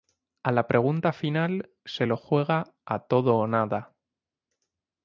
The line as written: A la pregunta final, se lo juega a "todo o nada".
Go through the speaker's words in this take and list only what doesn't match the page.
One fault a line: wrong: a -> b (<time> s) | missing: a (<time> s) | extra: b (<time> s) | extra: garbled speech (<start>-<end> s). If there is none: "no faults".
no faults